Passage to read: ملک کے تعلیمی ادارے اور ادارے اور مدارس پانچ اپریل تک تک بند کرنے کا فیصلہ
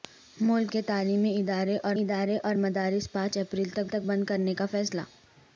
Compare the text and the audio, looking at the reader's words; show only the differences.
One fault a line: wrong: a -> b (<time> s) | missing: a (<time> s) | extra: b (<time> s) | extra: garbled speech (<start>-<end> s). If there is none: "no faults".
no faults